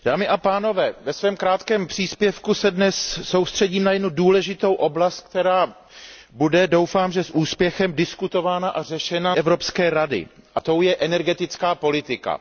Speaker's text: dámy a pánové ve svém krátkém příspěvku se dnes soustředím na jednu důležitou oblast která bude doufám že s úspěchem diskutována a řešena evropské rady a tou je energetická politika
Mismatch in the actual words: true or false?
false